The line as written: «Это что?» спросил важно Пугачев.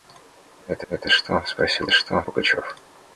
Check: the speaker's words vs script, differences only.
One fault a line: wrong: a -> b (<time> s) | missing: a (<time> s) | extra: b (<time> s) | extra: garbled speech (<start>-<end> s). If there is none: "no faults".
extra: это (0.9 s)
wrong: важно -> что (1.9 s)